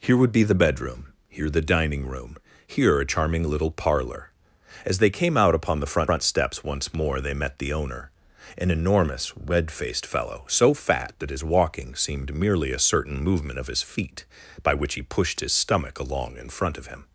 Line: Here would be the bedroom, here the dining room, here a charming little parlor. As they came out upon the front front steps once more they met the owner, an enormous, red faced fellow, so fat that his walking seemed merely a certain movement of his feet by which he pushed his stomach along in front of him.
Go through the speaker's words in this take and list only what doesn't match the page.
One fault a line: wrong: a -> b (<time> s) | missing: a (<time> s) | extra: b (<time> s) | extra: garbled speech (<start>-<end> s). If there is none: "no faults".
no faults